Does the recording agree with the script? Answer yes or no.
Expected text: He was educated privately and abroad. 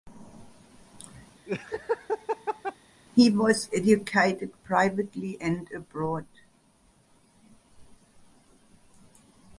yes